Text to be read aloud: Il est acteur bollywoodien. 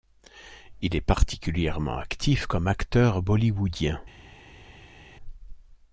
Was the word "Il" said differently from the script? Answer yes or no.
no